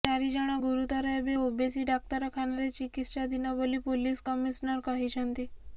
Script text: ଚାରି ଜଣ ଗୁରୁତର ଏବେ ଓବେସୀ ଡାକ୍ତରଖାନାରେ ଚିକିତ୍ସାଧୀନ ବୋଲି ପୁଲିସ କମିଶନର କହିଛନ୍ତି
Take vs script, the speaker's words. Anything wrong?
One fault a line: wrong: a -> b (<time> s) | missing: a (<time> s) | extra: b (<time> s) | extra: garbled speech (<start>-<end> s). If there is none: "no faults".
no faults